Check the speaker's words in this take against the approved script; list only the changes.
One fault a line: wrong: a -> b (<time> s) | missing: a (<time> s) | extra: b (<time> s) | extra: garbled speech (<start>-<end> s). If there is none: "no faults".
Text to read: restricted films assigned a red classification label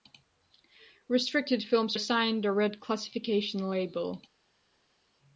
no faults